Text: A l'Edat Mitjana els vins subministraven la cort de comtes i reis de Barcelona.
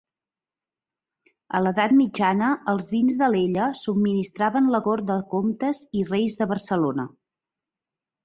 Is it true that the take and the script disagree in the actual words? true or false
true